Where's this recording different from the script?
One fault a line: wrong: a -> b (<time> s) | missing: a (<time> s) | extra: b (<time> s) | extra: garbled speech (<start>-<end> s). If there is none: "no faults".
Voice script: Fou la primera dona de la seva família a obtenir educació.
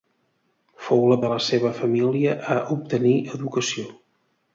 missing: primera dona (1.2 s)